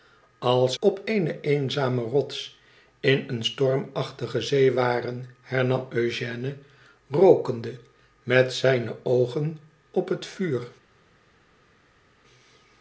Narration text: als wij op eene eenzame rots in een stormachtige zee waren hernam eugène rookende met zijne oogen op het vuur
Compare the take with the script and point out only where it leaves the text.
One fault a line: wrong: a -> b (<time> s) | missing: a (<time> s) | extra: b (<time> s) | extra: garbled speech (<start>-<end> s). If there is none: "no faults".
missing: wij (0.8 s)